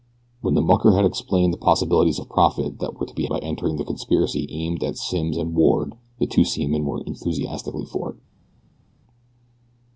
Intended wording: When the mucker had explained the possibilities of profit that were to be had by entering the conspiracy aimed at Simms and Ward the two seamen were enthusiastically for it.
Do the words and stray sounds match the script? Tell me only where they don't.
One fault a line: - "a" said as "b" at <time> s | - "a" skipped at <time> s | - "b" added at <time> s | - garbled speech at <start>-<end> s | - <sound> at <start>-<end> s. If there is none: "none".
- "had" skipped at 3.3 s